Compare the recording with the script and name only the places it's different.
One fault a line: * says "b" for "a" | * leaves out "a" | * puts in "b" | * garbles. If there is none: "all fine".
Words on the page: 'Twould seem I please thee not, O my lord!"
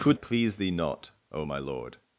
* leaves out "seem I"